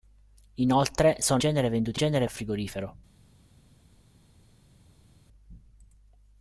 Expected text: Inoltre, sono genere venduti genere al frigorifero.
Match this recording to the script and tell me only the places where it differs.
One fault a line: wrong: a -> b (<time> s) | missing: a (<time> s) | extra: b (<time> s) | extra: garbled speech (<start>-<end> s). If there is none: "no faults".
no faults